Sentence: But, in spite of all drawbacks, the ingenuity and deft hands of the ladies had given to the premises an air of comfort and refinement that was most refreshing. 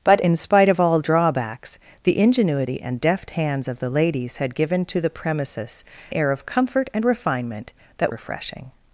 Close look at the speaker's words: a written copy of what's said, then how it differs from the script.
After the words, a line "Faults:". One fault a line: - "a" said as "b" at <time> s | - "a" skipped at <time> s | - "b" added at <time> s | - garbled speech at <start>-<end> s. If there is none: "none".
But, in spite of all drawbacks, the ingenuity and deft hands of the ladies had given to the premises air of comfort and refinement that refreshing.
Faults:
- "an" skipped at 5.8 s
- "was most" skipped at 8.1 s